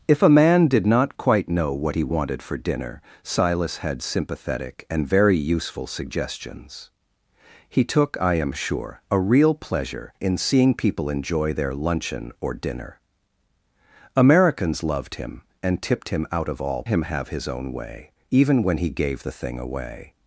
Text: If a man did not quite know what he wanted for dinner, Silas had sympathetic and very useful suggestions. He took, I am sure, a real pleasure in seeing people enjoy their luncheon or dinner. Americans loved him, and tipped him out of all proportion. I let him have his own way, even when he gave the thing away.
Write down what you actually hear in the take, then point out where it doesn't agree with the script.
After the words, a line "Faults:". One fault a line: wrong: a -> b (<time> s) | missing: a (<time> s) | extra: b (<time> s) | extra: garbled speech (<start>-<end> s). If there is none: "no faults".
If a man did not quite know what he wanted for dinner, Silas had sympathetic and very useful suggestions. He took, I am sure, a real pleasure in seeing people enjoy their luncheon or dinner. Americans loved him, and tipped him out of all him have his own way, even when he gave the thing away.
Faults:
missing: proportion I let (16.8 s)